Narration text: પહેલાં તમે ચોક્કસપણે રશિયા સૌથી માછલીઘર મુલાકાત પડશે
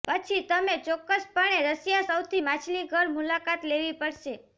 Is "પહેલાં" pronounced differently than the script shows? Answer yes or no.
yes